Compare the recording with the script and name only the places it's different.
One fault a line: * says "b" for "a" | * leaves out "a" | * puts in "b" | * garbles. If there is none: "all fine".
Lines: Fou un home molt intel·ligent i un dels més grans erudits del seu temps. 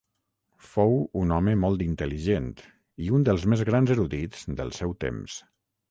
all fine